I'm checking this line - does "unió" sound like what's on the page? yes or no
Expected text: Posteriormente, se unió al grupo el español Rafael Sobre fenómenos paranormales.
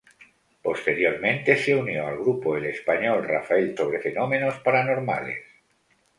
yes